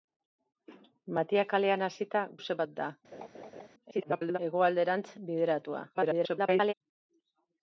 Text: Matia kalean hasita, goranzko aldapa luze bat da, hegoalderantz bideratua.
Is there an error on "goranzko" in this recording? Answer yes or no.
yes